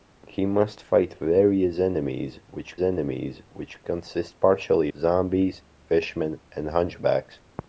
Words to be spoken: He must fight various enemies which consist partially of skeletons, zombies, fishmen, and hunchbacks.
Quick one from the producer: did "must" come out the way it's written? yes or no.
yes